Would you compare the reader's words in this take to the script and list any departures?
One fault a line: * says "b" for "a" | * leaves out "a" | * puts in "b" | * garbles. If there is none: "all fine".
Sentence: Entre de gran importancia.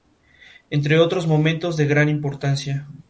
* puts in "otros momentos"